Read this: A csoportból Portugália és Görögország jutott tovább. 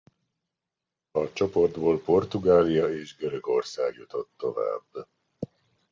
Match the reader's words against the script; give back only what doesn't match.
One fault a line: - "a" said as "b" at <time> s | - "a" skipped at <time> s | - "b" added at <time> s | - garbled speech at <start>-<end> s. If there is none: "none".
none